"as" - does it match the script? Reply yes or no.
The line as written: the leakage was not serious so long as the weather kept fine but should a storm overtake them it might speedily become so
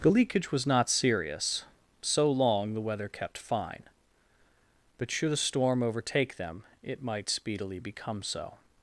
no